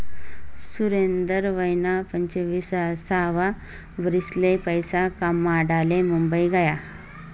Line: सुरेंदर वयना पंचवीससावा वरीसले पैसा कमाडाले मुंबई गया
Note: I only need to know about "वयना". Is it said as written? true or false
true